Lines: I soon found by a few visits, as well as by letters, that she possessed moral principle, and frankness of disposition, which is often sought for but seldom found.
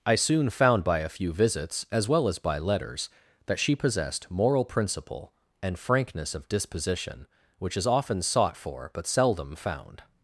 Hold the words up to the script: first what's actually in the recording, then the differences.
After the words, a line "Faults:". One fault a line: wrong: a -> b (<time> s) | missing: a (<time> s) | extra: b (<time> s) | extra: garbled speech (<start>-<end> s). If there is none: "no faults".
I soon found by a few visits, as well as by letters, that she possessed moral principle, and frankness of disposition, which is often sought for but seldom found.
Faults:
no faults